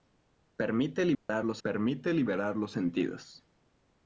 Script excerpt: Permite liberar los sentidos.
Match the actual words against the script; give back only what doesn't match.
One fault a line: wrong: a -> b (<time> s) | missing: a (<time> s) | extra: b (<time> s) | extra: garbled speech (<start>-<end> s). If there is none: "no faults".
extra: permite liberar los (1.6 s)